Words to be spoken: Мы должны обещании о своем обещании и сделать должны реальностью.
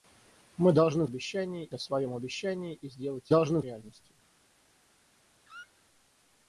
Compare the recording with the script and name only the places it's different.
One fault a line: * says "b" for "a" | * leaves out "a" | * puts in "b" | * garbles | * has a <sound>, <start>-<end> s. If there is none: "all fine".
* has a squeak, 5.4-5.8 s